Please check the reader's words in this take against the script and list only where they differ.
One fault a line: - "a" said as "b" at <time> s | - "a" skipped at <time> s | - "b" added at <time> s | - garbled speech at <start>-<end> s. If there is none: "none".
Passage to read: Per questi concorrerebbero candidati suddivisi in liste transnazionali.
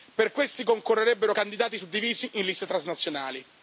none